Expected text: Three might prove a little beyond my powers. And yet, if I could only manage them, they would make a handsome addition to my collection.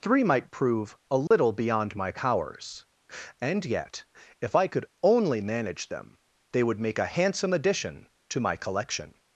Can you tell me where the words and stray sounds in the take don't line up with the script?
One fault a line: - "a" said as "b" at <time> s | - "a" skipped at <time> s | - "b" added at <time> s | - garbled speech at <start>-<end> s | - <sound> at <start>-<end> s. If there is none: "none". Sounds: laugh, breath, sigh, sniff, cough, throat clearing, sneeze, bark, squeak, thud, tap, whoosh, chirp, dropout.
- dropout at 1.3-1.3 s